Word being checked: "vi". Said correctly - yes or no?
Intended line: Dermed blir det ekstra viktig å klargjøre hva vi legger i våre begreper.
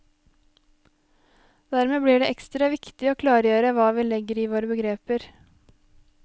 yes